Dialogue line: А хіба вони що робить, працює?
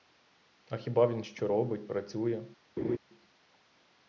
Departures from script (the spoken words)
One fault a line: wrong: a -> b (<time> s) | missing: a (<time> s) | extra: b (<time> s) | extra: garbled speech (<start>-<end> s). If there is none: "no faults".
wrong: вони -> він (1.1 s)